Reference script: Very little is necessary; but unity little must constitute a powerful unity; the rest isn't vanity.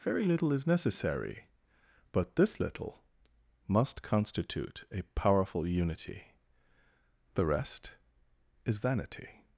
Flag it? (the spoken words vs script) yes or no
yes